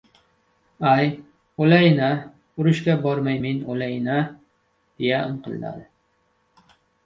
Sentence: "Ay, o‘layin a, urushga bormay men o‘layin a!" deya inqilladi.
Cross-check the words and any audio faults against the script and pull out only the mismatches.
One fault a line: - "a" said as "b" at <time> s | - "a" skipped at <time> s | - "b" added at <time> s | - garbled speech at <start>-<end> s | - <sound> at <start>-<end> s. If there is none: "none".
none